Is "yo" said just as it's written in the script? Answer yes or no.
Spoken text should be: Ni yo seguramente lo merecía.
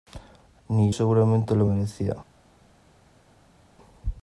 no